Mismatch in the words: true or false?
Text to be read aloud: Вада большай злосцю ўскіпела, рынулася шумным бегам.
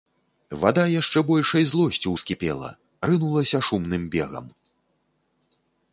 true